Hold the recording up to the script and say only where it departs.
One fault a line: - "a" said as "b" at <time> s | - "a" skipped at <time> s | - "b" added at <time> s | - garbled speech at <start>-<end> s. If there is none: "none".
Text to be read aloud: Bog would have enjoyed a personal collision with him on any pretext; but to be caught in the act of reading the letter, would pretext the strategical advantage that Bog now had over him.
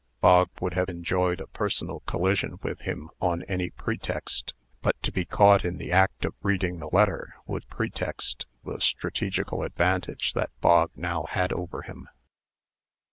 none